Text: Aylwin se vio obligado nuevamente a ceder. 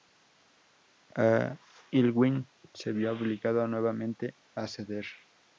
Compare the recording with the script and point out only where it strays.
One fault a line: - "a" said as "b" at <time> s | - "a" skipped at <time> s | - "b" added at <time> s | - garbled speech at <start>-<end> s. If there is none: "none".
none